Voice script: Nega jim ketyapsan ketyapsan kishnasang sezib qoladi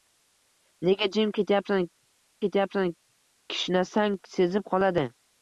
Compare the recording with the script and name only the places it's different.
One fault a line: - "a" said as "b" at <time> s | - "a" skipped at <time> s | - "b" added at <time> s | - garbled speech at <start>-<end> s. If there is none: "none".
none